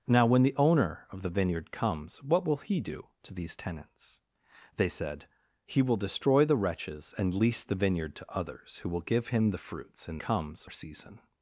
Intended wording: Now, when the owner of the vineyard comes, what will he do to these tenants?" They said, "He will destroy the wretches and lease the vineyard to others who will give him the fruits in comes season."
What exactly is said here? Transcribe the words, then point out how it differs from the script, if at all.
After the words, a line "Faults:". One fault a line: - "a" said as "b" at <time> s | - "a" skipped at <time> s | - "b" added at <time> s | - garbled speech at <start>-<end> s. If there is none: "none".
Now, when the owner of the vineyard comes, what will he do to these tenants?" They said, "He will destroy the wretches and lease the vineyard to others who will give him the fruits in comes season."
Faults:
none